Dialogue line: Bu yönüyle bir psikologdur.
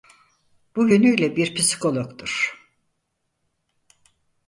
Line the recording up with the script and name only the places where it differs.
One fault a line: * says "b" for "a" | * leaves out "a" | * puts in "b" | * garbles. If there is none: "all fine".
all fine